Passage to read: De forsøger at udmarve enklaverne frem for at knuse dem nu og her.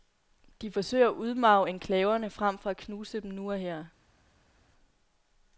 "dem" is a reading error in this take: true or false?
false